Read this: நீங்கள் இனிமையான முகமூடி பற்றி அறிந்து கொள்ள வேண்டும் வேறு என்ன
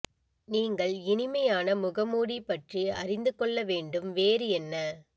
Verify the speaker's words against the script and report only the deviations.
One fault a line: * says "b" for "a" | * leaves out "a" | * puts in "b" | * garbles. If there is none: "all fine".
all fine